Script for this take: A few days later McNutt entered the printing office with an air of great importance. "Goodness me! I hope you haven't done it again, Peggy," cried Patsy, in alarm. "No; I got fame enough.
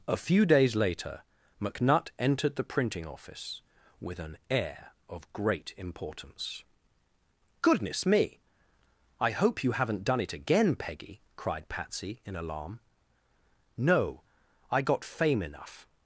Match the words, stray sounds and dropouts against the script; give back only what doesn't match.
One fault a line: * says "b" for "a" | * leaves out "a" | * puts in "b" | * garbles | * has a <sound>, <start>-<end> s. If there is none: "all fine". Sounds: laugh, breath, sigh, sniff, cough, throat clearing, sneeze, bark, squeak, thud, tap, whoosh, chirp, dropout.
all fine